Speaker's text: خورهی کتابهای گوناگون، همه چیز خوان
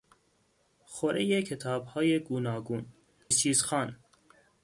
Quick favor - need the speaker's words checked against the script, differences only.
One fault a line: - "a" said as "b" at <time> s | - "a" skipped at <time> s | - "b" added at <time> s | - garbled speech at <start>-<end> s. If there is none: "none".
- "همه" skipped at 2.9 s